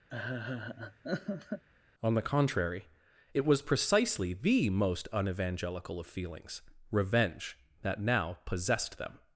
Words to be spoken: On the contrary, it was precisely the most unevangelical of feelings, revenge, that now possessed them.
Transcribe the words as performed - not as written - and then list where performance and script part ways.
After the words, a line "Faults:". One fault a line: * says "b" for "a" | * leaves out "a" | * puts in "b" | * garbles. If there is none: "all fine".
On the contrary, it was precisely the most unevangelical of feelings, revenge, that now possessed them.
Faults:
all fine